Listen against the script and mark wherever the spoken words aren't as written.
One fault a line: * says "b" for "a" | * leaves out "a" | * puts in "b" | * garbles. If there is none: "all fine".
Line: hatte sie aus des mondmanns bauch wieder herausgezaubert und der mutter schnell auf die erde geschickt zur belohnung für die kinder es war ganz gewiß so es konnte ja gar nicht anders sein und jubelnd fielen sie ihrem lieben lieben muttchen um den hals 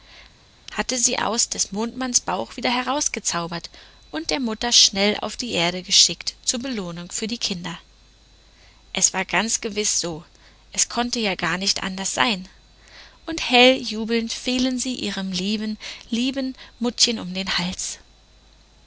* puts in "hell"